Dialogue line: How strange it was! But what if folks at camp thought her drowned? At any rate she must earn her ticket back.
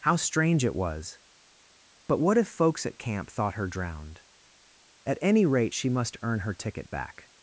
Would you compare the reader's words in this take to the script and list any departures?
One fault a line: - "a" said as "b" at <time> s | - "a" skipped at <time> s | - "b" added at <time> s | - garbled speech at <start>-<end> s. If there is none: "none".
none